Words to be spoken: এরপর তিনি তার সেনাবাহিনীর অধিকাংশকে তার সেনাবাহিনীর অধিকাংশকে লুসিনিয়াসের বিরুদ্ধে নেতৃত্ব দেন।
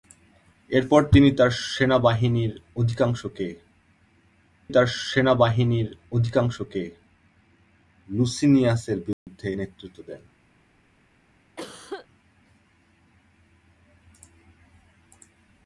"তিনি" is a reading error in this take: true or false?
false